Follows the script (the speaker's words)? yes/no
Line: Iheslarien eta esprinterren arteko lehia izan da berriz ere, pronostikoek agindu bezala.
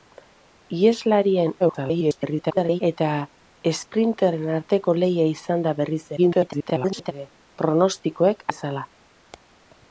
no